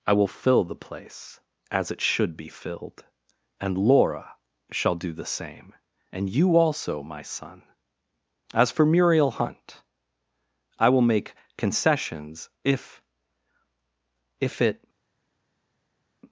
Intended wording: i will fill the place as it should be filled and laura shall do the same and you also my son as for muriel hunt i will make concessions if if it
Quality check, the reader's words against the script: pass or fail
pass